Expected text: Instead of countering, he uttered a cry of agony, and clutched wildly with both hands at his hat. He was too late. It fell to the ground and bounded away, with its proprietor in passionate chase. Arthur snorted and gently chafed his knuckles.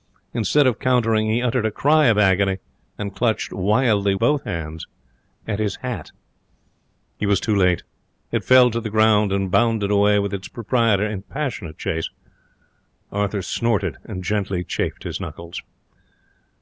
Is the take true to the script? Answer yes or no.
no